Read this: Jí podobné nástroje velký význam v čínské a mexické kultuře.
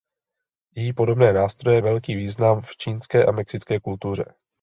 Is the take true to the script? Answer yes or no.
yes